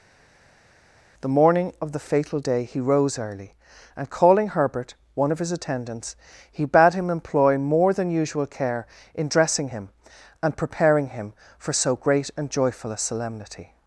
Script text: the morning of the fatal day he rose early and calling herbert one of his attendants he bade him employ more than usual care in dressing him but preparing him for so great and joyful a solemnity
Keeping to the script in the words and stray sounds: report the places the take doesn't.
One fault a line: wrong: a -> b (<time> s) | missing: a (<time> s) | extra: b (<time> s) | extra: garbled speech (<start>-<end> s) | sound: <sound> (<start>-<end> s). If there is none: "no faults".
wrong: but -> and (10.4 s)